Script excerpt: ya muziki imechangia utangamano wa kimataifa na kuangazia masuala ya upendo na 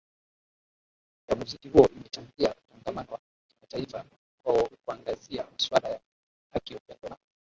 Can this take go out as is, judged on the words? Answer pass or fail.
fail